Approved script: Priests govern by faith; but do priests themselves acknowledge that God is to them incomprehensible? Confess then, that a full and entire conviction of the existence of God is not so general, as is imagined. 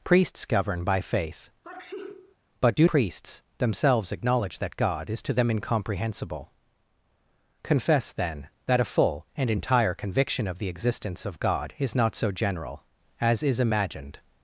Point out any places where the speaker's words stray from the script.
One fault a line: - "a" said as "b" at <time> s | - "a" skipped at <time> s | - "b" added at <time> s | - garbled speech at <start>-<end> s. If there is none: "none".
none